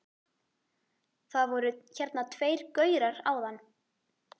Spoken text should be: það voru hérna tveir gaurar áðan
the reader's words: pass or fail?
pass